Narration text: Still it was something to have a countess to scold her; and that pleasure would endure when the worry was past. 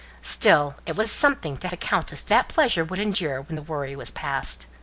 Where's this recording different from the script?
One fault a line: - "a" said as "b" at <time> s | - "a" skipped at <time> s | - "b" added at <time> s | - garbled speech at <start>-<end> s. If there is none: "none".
- "have" skipped at 1.7 s
- "scold her and" skipped at 2.3 s